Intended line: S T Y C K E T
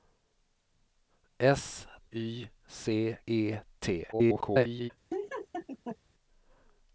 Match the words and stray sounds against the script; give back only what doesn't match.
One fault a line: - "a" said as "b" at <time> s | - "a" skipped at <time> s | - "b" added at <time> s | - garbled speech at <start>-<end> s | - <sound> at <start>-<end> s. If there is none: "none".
- "T" skipped at 1.9 s
- "K" skipped at 3.2 s
- garbled speech at 4.1-4.9 s
- laugh at 5.1-6.0 s